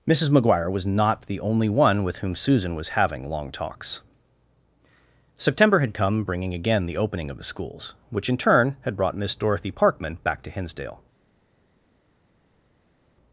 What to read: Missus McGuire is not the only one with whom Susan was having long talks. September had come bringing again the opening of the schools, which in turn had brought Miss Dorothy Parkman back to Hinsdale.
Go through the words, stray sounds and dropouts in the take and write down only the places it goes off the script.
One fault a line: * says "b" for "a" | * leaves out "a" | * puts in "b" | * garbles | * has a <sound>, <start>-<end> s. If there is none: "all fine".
* says "was" for "is"